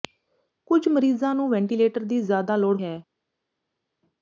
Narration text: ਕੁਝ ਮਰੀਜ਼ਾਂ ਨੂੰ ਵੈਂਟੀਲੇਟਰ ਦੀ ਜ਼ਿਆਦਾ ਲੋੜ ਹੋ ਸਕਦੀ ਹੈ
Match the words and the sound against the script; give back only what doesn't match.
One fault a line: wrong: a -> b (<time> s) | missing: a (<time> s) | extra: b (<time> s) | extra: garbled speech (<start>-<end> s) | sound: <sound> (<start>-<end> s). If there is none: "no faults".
missing: ਹੋ ਸਕਦੀ (2.8 s)